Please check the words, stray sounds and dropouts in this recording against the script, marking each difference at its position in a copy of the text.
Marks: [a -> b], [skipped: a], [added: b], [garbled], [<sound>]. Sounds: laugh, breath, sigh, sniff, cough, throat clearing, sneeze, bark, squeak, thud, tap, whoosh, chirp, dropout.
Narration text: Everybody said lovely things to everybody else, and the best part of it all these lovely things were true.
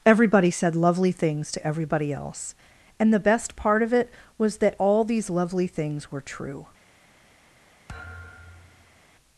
Everybody said lovely things to everybody else, and the best part of it [added: was that] all these lovely things were true. [thud]